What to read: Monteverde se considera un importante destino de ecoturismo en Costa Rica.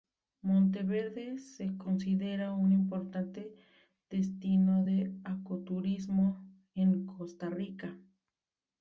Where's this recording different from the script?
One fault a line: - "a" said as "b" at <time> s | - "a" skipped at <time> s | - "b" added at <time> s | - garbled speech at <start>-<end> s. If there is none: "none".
none